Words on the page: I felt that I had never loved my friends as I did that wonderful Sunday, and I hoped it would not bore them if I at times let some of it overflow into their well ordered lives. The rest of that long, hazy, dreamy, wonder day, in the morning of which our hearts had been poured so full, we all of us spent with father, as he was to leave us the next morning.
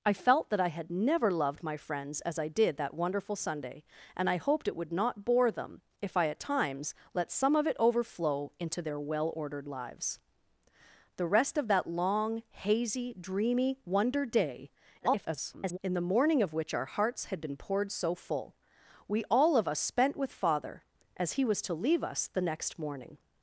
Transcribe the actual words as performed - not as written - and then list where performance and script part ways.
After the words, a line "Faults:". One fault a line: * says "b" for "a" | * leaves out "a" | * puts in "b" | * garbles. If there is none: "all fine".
I felt that I had never loved my friends as I did that wonderful Sunday, and I hoped it would not bore them if I at times let some of it overflow into their well ordered lives. The rest of that long, hazy, dreamy, wonder day, [garbled] in the morning of which our hearts had been poured so full, we all of us spent with father, as he was to leave us the next morning.
Faults:
* garbles